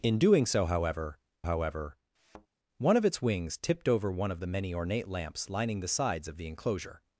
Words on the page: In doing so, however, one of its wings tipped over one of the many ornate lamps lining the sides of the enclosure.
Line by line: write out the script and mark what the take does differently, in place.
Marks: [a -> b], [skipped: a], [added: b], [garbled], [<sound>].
In doing so, however, [added: however] [thud] one of its wings tipped over one of the many ornate lamps lining the sides of the enclosure.